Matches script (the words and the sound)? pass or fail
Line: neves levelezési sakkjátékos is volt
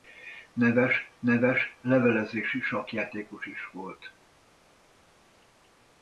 fail